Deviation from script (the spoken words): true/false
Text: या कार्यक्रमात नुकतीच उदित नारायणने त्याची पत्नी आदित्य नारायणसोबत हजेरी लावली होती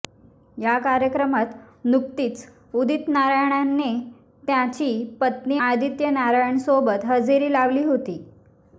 false